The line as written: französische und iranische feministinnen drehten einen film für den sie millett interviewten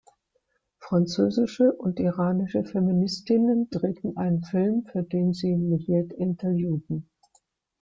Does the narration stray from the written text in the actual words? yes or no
no